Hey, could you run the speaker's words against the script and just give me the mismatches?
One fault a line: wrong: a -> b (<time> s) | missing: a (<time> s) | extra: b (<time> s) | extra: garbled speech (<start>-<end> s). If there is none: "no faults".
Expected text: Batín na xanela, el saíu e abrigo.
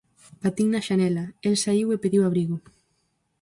extra: pediu (2.0 s)